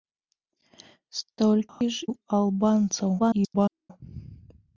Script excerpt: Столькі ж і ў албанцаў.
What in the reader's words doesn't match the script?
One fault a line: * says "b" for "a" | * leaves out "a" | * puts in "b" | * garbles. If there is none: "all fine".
* leaves out "і"
* garbles